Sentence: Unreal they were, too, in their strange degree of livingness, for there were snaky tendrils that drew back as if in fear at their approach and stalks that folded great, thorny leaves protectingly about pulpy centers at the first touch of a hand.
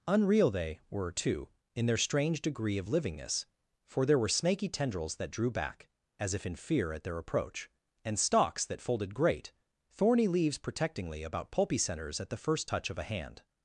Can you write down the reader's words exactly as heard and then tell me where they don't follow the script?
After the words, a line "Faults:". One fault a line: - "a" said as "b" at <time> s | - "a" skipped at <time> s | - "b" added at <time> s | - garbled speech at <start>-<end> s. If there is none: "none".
Unreal they were, too, in their strange degree of livingness, for there were snaky tendrils that drew back as if in fear at their approach and stalks that folded great, thorny leaves protectingly about pulpy centers at the first touch of a hand.
Faults:
none